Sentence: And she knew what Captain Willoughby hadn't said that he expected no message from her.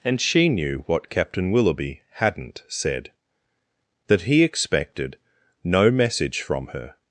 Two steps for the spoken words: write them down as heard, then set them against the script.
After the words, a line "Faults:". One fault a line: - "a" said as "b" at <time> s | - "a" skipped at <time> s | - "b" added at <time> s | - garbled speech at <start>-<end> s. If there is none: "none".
And she knew what Captain Willoughby hadn't said that he expected no message from her.
Faults:
none